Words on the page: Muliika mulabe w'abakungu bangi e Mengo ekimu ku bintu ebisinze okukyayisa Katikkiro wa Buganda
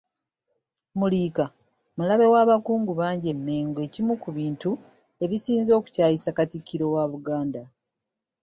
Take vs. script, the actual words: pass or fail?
pass